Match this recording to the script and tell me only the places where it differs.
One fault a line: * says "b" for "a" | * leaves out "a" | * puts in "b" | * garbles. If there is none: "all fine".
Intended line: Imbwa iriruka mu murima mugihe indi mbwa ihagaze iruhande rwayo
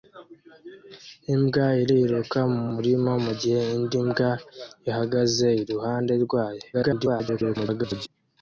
* garbles